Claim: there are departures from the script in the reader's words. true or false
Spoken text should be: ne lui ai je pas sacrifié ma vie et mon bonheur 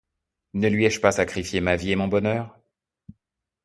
false